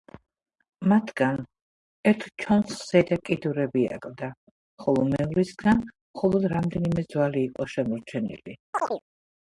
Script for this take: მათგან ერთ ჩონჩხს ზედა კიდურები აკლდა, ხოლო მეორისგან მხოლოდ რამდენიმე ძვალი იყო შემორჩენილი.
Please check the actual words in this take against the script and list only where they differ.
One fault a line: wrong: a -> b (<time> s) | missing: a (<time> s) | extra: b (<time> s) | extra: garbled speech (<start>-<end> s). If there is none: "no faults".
no faults